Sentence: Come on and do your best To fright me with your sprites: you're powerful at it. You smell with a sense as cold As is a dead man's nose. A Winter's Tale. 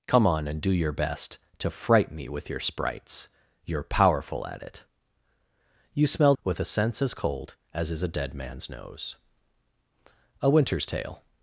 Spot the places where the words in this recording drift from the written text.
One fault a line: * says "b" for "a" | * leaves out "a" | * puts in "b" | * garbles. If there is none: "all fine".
all fine